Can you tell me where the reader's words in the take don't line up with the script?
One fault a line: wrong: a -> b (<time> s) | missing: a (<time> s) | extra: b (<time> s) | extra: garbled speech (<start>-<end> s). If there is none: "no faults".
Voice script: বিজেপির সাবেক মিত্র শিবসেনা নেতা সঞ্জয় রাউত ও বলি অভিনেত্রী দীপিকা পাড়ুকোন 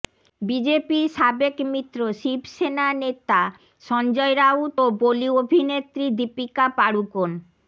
no faults